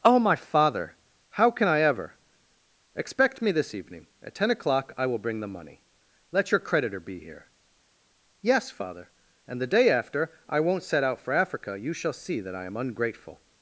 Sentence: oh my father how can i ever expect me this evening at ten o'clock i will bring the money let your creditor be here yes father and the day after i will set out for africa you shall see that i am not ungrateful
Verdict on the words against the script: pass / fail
fail